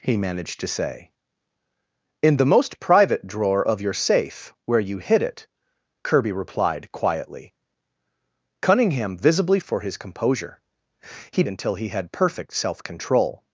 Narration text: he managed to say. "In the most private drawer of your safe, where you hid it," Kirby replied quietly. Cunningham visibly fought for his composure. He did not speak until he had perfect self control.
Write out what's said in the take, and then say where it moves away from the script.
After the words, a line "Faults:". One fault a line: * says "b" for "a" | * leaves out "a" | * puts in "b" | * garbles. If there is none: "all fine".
he managed to say. "In the most private drawer of your safe, where you hid it," Kirby replied quietly. Cunningham visibly for his composure. He until he had perfect self control.
Faults:
* leaves out "fought"
* leaves out "did not speak"